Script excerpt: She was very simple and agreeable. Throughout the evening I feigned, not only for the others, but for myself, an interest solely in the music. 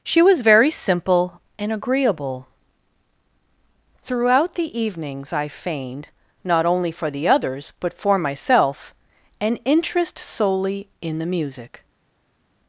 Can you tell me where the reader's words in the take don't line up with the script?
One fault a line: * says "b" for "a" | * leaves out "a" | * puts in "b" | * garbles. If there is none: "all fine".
* says "evenings" for "evening"